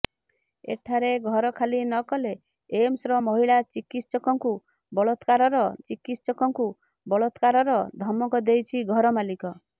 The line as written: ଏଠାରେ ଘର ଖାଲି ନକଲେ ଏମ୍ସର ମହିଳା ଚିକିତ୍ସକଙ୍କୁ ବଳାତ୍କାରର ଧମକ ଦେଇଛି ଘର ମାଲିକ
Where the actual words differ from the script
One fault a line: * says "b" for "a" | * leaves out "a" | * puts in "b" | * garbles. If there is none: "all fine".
* puts in "ଚିକିତ୍ସକଙ୍କୁ ବଳାତ୍କାରର"